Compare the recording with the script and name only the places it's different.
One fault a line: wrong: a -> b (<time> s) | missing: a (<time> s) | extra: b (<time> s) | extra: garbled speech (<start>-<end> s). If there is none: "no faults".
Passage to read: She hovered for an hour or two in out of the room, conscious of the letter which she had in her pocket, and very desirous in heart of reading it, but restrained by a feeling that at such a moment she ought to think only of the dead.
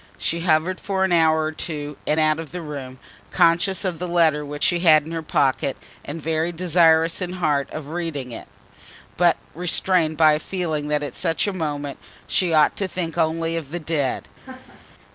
no faults